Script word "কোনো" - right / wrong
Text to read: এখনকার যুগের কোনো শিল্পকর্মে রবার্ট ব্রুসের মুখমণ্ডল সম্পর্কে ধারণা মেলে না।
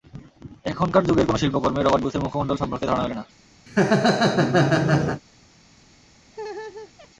right